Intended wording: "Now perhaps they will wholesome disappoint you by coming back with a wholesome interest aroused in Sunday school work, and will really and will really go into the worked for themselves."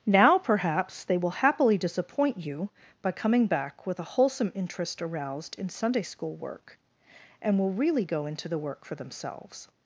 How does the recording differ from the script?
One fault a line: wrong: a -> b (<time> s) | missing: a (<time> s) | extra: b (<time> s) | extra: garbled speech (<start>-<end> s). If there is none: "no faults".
wrong: wholesome -> happily (1.4 s)
missing: and will really (8.1 s)
wrong: worked -> work (8.6 s)